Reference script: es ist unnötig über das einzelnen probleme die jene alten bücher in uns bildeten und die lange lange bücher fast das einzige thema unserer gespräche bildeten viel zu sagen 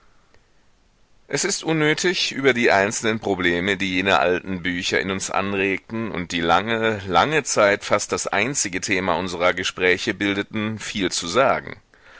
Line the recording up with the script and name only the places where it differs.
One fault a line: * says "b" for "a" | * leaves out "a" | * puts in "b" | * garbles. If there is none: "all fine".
* says "die" for "das"
* says "anregten" for "bildeten"
* says "zeit" for "bücher"